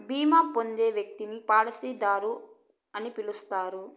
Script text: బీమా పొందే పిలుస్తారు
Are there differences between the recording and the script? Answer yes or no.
yes